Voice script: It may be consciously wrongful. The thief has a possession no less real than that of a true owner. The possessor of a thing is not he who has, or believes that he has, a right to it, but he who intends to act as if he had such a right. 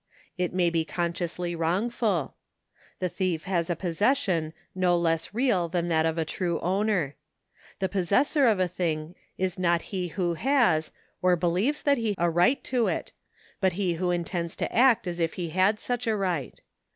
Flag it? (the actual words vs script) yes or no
yes